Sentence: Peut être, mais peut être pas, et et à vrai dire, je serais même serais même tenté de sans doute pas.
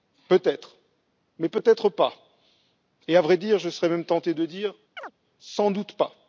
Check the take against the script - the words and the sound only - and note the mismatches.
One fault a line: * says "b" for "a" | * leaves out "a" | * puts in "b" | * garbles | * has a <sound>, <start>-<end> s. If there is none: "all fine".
* leaves out "et"
* leaves out "serais même"
* puts in "dire"
* has a chirp, 5.0-5.1 s